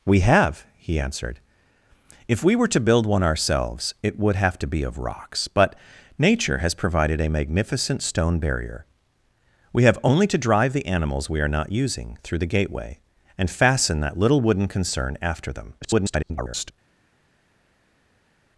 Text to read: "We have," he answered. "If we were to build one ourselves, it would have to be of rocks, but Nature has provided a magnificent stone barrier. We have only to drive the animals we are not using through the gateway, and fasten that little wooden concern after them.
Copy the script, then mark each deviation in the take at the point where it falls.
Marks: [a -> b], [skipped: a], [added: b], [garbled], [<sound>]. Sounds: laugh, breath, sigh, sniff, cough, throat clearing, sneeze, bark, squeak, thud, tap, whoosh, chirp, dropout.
"We have," he answered. "If we were to build one ourselves, it would have to be of rocks, but Nature has provided a magnificent stone barrier. We have only to drive the animals we are not using through the gateway, and fasten that little wooden concern after them. [garbled]